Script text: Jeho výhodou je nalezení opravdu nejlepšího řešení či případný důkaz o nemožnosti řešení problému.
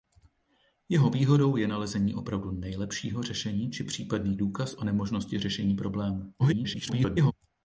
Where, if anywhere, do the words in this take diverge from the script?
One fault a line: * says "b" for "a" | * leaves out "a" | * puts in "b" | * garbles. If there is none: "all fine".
* garbles